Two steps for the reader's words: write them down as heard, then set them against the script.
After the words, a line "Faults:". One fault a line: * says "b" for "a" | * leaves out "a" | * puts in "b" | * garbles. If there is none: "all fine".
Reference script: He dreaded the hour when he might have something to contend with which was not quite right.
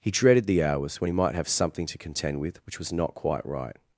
He dreaded the hours when he might have something to contend with which was not quite right.
Faults:
* says "hours" for "hour"